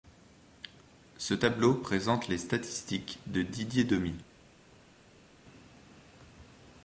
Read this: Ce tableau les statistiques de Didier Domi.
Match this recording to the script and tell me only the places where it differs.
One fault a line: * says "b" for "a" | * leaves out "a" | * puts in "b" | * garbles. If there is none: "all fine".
* puts in "présente"